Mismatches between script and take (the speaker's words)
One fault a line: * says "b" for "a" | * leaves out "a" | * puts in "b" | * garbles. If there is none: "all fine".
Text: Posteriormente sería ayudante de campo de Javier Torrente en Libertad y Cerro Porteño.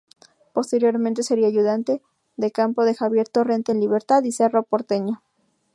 all fine